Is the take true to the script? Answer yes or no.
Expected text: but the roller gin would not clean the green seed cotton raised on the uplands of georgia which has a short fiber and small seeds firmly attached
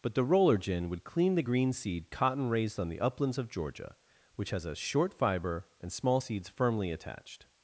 no